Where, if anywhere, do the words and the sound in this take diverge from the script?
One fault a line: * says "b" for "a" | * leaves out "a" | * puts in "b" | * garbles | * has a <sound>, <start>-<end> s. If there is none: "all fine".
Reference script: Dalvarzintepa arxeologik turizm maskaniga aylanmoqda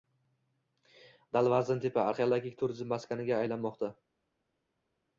all fine